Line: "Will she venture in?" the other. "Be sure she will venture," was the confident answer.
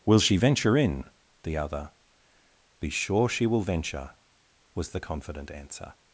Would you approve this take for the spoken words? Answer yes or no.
yes